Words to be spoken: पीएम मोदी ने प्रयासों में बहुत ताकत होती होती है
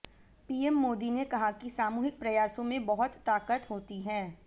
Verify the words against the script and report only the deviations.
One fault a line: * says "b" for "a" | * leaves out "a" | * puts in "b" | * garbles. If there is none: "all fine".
* puts in "कहा कि सामूहिक"
* leaves out "होती"